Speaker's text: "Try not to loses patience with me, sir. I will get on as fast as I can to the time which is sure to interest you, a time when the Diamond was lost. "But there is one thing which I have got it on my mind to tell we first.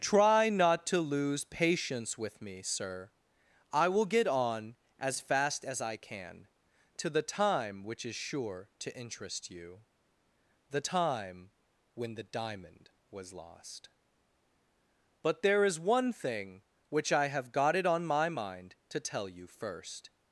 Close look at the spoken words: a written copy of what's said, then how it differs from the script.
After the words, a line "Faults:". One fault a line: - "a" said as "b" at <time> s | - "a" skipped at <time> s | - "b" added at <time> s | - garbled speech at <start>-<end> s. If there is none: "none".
"Try not to lose patience with me, sir. I will get on as fast as I can to the time which is sure to interest you, the time when the Diamond was lost. "But there is one thing which I have got it on my mind to tell you first.
Faults:
- "loses" said as "lose" at 1.0 s
- "a" said as "the" at 10.7 s
- "we" said as "you" at 19.3 s